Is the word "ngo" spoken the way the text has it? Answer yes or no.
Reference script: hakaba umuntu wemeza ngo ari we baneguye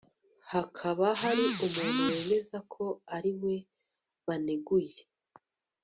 no